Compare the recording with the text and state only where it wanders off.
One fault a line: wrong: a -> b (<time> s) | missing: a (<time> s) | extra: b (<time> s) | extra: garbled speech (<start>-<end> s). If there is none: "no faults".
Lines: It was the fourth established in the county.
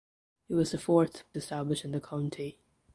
no faults